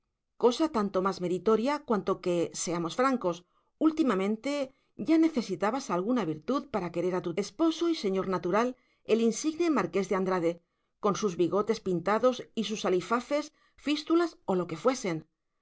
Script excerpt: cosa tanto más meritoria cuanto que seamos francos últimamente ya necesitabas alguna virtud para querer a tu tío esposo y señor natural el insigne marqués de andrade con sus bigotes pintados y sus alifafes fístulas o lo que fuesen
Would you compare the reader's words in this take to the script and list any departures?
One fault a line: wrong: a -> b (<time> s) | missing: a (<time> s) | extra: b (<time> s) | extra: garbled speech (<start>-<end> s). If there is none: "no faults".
missing: tío (7.3 s)